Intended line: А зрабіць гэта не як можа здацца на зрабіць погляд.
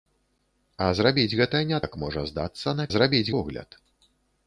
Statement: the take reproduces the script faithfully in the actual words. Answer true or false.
true